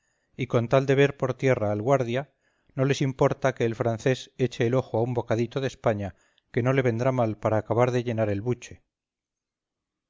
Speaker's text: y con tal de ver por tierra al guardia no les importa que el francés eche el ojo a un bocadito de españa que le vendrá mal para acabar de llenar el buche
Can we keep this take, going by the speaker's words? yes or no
no